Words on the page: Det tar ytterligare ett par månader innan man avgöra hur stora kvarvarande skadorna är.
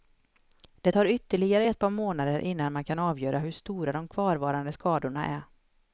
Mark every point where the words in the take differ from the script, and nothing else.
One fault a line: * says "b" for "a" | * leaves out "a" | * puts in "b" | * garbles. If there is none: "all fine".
* puts in "kan"
* puts in "de"